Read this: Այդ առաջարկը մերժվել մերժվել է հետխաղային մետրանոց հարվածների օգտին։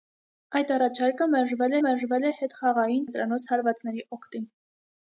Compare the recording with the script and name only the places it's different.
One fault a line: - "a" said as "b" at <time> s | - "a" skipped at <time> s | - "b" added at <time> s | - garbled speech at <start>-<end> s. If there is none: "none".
none